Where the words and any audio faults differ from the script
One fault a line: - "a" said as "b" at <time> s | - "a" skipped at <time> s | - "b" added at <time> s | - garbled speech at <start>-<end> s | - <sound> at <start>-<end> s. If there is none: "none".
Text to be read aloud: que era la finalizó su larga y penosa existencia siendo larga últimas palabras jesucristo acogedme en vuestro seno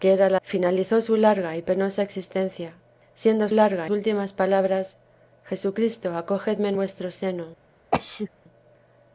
- sneeze at 7.9-8.3 s